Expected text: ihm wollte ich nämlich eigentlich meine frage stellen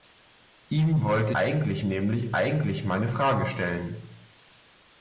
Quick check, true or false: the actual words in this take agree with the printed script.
false